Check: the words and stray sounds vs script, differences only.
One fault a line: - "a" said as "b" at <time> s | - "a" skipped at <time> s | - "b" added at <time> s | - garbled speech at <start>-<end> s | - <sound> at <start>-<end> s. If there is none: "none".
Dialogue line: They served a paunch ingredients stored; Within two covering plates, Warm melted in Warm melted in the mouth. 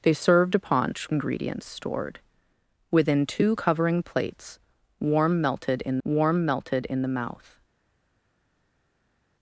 none